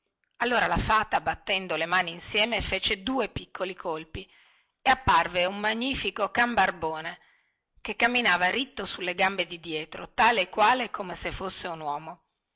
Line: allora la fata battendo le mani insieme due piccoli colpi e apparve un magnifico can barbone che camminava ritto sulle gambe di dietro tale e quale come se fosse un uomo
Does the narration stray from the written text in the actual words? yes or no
yes